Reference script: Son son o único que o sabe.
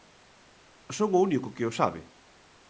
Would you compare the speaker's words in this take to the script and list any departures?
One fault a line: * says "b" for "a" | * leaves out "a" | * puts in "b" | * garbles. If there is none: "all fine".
* leaves out "son"